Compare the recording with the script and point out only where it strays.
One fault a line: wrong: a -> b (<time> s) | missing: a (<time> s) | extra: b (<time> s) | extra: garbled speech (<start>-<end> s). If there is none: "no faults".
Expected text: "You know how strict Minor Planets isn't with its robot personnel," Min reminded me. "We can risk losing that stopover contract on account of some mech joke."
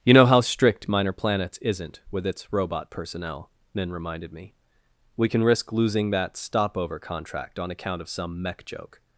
no faults